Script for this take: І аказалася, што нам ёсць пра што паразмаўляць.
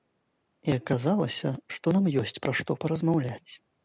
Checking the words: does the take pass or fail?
pass